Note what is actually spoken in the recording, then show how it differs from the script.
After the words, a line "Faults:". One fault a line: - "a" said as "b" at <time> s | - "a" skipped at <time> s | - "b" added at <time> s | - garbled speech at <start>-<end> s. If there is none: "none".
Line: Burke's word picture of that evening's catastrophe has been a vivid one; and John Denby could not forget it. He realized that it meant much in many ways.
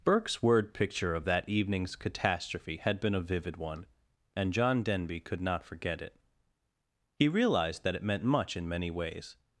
Burke's word picture of that evening's catastrophe had been a vivid one; and John Denby could not forget it. He realized that it meant much in many ways.
Faults:
- "has" said as "had" at 2.8 s